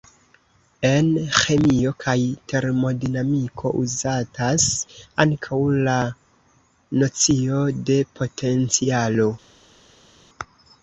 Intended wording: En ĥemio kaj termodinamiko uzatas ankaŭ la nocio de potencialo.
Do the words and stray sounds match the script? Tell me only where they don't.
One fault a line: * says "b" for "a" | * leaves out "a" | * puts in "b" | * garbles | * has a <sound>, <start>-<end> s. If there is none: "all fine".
all fine